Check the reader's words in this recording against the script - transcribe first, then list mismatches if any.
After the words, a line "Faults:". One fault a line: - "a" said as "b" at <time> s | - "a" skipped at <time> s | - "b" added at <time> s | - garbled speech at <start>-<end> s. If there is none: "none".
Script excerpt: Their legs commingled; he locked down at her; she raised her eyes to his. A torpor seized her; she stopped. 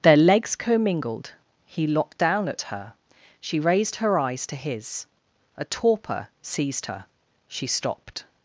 Their legs commingled; he locked down at her; she raised her eyes to his. A torpor seized her; she stopped.
Faults:
none